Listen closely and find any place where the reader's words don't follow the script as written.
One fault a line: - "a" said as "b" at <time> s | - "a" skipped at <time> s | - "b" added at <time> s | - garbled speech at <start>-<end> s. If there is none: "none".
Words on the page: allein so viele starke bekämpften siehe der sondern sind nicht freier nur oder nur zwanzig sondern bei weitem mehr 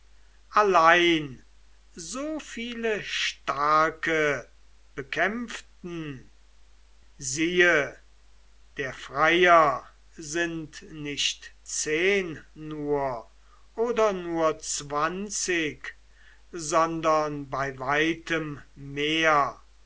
- "sondern" said as "freier" at 8.9 s
- "freier" said as "zehn" at 11.6 s